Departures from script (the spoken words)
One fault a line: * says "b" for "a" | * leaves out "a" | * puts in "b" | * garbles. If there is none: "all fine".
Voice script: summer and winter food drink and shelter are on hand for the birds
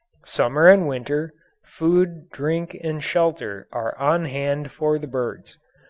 all fine